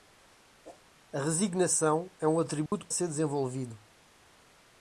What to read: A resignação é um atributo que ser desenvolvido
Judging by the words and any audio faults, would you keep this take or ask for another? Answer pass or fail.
fail